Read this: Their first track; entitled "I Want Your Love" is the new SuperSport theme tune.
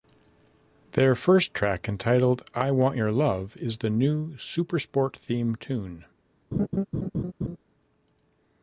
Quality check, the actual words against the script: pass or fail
pass